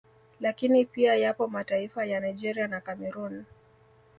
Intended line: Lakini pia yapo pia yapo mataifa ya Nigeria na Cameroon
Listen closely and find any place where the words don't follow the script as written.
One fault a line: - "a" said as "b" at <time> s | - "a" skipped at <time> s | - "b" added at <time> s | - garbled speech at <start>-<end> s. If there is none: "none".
- "pia yapo" skipped at 1.5 s